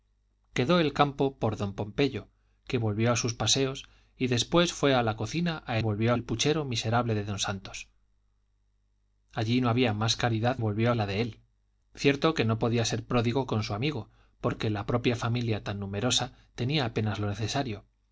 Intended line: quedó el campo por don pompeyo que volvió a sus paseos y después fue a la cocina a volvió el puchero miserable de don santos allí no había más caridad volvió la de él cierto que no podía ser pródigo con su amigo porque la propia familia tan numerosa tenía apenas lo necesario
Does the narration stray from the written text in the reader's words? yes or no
no